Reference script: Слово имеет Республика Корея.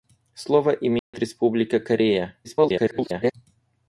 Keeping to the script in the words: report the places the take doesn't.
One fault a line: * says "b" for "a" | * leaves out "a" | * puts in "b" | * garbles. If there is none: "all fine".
* garbles